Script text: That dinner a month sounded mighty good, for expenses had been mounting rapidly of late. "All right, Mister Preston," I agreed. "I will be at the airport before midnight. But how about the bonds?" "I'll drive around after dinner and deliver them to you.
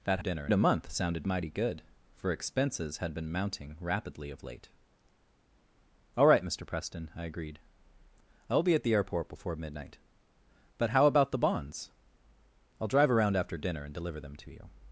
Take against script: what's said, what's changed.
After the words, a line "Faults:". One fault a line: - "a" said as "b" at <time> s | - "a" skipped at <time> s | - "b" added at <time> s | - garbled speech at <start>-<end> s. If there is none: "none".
That dinner a month sounded mighty good, for expenses had been mounting rapidly of late. "All right, Mister Preston," I agreed. "I will be at the airport before midnight. But how about the bonds?" "I'll drive around after dinner and deliver them to you.
Faults:
none